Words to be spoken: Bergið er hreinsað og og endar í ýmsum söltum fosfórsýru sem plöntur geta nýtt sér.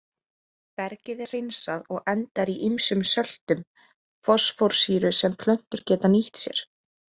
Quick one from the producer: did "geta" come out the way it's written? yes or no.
yes